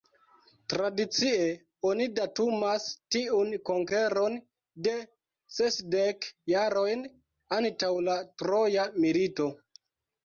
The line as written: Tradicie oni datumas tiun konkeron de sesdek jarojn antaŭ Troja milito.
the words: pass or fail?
fail